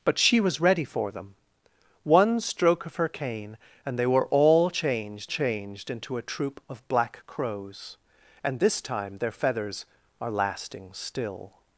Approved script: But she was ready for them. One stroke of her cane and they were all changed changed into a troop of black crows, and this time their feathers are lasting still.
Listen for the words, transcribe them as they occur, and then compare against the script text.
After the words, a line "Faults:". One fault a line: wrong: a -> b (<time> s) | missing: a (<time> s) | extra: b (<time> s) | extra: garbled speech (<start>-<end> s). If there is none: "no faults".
But she was ready for them. One stroke of her cane and they were all changed changed into a troop of black crows, and this time their feathers are lasting still.
Faults:
no faults